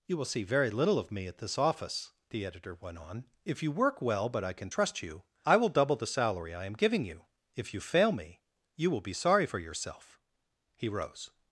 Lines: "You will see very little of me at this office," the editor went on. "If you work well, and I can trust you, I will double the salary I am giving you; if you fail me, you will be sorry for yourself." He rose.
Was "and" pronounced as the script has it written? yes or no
no